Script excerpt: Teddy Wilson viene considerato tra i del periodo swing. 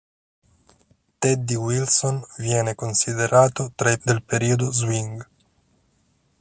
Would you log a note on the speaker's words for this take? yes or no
no